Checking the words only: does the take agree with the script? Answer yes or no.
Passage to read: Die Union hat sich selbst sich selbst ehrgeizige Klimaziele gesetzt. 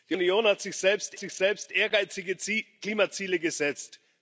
yes